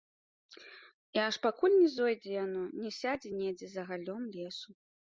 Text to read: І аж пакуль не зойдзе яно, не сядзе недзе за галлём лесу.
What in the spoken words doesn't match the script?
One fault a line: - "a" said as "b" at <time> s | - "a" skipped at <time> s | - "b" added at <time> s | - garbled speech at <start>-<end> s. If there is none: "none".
none